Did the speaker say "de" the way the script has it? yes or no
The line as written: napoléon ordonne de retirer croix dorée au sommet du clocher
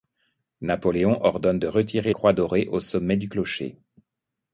yes